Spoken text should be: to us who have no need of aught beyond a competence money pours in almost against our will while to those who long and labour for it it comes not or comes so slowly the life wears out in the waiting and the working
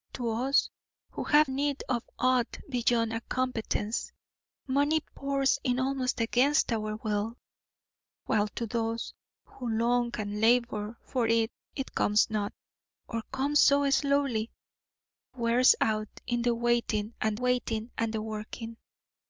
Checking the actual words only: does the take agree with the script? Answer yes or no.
no